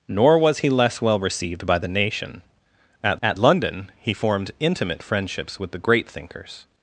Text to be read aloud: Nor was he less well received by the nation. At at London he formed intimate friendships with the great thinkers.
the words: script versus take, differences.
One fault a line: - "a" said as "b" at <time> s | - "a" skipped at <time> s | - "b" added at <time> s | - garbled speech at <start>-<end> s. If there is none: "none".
none